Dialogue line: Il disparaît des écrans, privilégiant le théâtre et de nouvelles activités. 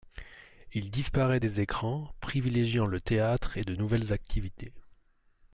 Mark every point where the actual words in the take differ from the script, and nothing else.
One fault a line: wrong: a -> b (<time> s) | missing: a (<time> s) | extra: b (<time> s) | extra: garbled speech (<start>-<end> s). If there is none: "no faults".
no faults